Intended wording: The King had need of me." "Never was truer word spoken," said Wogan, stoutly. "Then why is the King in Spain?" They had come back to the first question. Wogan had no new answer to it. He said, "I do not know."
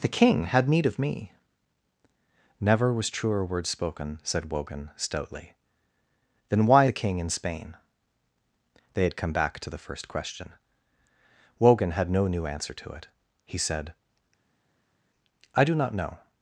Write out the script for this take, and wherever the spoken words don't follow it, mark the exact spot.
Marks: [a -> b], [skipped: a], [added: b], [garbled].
The King had need of me." "Never was truer word spoken," said Wogan, stoutly. "Then why [skipped: is] the King in Spain?" They had come back to the first question. Wogan had no new answer to it. He said, "I do not know."